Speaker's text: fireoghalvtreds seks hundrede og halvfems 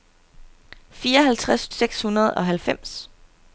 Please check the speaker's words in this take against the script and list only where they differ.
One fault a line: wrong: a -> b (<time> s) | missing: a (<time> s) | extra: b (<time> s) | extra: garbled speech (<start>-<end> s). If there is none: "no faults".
no faults